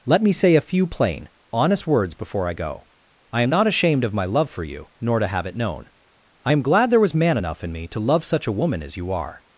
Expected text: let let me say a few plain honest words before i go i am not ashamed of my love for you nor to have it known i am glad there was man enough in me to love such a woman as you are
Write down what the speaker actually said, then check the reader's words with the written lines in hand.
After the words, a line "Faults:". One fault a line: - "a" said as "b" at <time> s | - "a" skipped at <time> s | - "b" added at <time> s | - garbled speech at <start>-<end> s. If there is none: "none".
let me say a few plain honest words before i go i am not ashamed of my love for you nor to have it known i am glad there was man enough in me to love such a woman as you are
Faults:
- "let" skipped at 0.2 s